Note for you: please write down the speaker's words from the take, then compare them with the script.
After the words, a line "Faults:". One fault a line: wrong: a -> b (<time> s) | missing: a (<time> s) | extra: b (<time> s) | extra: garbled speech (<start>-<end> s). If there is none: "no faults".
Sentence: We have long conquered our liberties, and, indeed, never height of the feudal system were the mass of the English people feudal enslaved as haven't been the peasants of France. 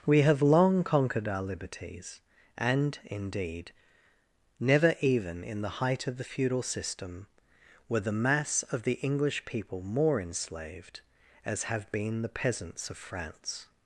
We have long conquered our liberties, and, indeed, never even in the height of the feudal system were the mass of the English people more enslaved as have been the peasants of France.
Faults:
extra: even in the (5.0 s)
wrong: feudal -> more (9.8 s)
wrong: haven't -> have (11.7 s)